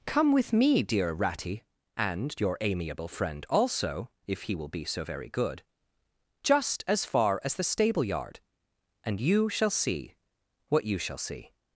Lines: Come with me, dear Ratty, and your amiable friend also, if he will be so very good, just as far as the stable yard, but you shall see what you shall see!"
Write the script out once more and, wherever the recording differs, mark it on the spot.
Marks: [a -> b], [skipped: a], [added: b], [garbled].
Come with me, dear Ratty, and your amiable friend also, if he will be so very good, just as far as the stable yard, [but -> and] you shall see what you shall see!"